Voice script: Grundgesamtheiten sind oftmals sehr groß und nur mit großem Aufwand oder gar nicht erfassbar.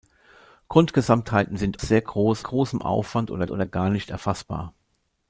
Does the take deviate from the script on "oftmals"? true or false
true